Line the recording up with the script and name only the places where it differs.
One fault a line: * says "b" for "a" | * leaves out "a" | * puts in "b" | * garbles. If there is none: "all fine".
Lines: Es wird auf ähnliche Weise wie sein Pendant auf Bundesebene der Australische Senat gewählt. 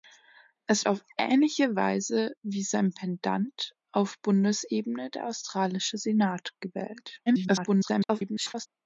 * leaves out "wird"
* garbles